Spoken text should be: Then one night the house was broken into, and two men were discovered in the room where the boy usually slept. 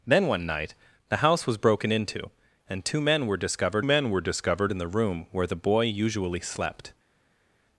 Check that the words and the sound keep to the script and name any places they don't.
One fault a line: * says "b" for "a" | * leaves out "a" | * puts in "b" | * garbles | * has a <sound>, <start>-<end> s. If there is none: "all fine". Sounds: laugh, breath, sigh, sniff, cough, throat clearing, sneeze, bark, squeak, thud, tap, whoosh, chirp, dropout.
* puts in "men were discovered"